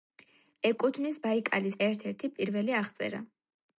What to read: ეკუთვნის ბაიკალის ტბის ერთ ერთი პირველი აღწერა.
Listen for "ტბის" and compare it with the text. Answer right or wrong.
wrong